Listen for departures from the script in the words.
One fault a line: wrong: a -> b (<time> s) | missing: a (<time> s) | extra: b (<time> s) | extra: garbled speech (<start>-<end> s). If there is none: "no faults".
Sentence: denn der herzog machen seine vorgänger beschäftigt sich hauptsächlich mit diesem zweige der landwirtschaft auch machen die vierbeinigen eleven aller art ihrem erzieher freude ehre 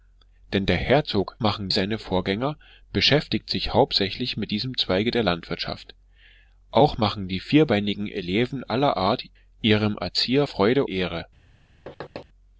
no faults